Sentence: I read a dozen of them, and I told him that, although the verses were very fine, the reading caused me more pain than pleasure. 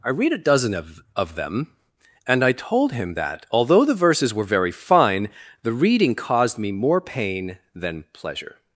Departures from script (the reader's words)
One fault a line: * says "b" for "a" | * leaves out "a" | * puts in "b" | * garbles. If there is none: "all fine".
* puts in "of"